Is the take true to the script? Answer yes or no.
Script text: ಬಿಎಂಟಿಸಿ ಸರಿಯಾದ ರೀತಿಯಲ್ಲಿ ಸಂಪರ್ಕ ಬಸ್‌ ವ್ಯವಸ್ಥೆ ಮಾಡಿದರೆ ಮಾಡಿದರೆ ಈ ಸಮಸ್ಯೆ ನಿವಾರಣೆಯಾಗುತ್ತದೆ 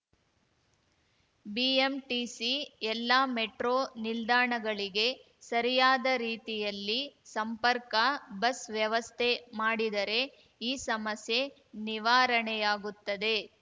no